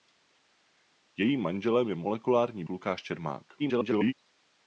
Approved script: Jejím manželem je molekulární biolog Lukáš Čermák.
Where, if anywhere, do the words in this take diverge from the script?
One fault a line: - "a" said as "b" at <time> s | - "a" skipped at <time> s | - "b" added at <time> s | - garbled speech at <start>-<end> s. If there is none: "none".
- "biolog" skipped at 2.6 s
- garbled speech at 3.6-4.1 s